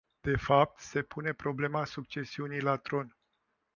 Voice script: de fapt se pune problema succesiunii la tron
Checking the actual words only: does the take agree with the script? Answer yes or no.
yes